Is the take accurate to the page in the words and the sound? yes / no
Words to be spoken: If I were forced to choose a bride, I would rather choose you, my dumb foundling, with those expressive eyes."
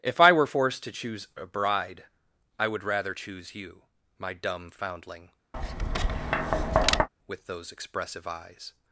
no